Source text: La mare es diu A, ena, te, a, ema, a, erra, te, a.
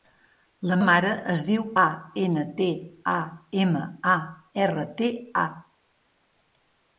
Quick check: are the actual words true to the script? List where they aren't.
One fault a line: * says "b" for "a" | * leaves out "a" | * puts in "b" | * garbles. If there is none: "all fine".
all fine